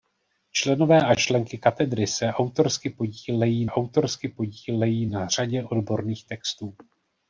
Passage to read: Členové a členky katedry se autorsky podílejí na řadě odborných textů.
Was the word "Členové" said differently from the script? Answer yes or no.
no